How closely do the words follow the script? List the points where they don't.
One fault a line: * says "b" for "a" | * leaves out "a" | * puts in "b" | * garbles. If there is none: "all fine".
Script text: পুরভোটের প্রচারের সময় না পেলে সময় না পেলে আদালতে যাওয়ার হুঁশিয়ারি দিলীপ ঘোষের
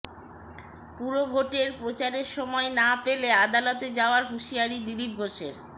* leaves out "সময় না পেলে"